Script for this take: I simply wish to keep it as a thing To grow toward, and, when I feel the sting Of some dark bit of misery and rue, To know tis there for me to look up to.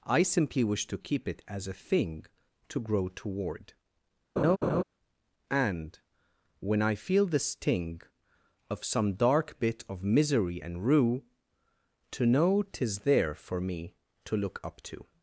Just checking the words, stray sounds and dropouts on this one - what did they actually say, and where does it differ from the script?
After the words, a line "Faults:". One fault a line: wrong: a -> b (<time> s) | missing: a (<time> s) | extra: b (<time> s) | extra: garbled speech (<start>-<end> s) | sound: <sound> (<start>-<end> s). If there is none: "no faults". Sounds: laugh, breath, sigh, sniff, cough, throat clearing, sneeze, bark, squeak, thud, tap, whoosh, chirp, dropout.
I simply wish to keep it as a thing To grow toward, and, when I feel the sting Of some dark bit of misery and rue, To know tis there for me to look up to.
Faults:
sound: laugh (4.4-4.8 s)